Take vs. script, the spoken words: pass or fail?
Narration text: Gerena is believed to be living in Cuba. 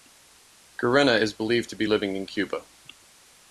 pass